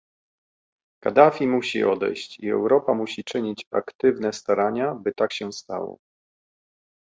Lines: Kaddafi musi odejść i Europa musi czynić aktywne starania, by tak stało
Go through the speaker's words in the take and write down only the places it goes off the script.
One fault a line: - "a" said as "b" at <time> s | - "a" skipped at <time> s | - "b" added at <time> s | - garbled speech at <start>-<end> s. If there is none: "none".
- "się" added at 5.3 s